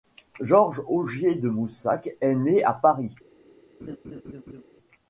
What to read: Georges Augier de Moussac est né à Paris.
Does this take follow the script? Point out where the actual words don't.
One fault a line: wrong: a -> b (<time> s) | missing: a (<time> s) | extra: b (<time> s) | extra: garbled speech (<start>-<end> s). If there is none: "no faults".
no faults